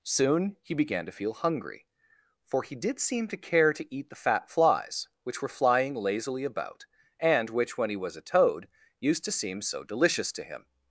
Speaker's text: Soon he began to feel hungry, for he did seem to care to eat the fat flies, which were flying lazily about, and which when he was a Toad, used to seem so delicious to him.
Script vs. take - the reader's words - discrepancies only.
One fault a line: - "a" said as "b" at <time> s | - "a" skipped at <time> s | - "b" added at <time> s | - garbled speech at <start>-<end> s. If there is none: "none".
none